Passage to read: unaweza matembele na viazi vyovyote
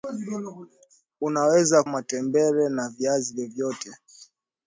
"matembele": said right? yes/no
yes